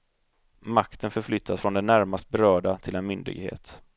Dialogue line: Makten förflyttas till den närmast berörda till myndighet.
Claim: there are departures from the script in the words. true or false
true